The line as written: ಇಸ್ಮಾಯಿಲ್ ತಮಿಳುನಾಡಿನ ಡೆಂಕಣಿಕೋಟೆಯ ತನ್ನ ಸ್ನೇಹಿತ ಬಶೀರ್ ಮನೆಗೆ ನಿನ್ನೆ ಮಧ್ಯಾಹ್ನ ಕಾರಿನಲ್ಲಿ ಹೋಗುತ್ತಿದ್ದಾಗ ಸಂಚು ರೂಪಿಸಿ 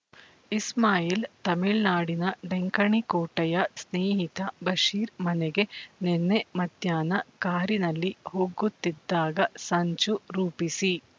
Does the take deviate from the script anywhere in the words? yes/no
yes